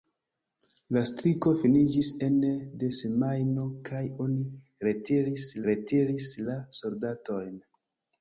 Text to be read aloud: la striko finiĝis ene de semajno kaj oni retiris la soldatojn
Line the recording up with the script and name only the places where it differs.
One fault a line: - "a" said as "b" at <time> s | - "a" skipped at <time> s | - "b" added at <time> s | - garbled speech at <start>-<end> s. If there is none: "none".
- "retiris" added at 5.7 s